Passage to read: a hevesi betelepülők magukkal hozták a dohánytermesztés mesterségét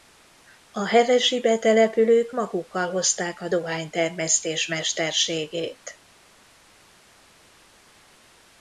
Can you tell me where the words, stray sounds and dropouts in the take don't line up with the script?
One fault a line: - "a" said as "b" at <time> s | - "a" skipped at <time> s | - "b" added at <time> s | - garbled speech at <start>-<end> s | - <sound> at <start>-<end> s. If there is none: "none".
none